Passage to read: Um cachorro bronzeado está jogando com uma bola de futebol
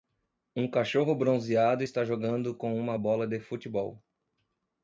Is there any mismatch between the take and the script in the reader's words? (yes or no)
no